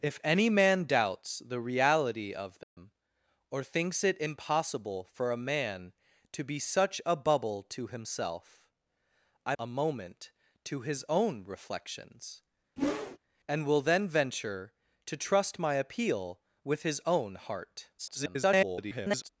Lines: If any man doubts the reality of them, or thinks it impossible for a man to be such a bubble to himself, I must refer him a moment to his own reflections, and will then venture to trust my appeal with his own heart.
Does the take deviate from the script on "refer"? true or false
true